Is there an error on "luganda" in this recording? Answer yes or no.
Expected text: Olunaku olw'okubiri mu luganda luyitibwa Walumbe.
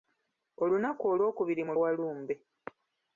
yes